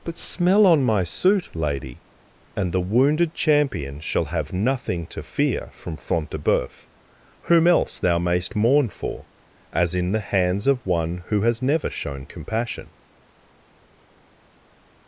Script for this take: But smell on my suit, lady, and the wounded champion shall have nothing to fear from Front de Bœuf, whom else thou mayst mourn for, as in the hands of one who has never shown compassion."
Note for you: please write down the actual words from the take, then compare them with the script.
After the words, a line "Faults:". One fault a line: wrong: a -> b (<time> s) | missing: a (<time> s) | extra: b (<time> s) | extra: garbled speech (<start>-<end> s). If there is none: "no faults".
But smell on my suit, lady, and the wounded champion shall have nothing to fear from Front de Bœuf, whom else thou mayst mourn for, as in the hands of one who has never shown compassion."
Faults:
no faults